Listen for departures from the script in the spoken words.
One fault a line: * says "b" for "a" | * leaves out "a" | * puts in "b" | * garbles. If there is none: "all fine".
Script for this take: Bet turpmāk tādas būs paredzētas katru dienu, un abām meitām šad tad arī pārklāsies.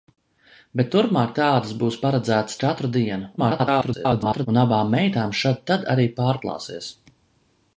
* garbles